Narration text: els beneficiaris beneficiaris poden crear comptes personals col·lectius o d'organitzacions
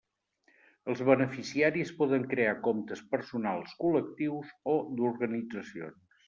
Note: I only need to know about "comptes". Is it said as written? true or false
true